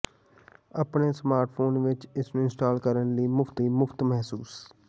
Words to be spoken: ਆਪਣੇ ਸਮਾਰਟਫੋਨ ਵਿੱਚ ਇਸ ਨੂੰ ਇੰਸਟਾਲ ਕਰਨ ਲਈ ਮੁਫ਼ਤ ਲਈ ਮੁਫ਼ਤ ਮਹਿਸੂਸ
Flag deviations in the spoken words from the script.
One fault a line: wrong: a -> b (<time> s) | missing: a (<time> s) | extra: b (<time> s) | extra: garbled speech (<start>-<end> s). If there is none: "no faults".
no faults